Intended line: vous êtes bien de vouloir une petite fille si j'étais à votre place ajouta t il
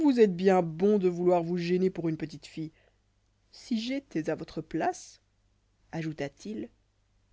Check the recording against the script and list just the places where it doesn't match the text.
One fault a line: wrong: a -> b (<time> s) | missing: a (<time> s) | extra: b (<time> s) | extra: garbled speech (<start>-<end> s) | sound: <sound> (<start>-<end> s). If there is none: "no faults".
extra: bon (0.6 s)
extra: vous gêner pour (1.4 s)